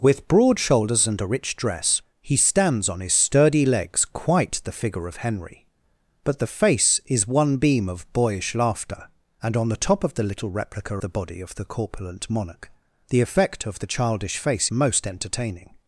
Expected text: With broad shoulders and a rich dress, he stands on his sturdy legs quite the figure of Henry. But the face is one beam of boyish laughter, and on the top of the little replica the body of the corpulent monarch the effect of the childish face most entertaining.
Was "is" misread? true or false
false